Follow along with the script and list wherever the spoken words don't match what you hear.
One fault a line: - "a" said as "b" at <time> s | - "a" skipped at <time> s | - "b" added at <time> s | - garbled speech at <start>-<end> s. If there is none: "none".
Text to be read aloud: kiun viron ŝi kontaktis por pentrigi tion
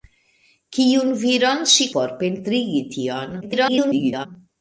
- "kontaktis" skipped at 1.9 s
- garbled speech at 3.4-4.3 s